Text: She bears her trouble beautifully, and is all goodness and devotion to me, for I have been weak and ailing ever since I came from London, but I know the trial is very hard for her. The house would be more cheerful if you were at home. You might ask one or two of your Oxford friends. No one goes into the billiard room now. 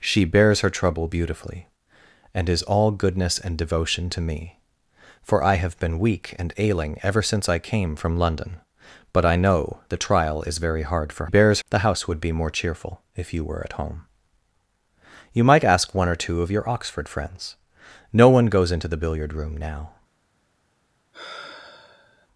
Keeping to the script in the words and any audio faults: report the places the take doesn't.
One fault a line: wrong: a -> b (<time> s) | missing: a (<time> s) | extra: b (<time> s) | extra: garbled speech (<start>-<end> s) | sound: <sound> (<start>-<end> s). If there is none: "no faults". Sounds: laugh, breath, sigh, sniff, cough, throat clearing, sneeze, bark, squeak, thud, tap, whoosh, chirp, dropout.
wrong: her -> bears (11.2 s)
sound: sigh (21.1-22.3 s)